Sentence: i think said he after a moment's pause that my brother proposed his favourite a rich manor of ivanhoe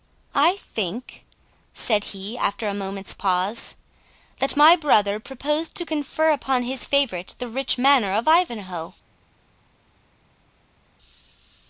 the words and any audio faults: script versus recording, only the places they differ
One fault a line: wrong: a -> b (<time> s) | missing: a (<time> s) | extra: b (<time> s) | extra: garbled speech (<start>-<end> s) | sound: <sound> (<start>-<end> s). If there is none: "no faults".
extra: to confer upon (5.7 s)
wrong: a -> the (7.4 s)